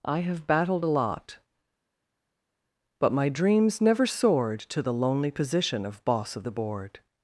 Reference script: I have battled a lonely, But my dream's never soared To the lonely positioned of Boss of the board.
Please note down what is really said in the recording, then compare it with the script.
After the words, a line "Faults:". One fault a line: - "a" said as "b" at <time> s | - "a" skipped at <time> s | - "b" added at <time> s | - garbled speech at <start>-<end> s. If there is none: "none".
I have battled a lot, But my dream's never soared To the lonely position of Boss of the board.
Faults:
- "lonely" said as "lot" at 0.9 s
- "positioned" said as "position" at 5.3 s